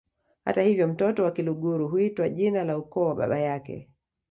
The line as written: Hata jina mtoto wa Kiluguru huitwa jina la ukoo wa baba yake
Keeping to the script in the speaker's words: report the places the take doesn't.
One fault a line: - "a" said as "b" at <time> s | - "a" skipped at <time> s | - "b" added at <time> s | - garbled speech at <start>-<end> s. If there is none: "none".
- "jina" said as "hivyo" at 0.6 s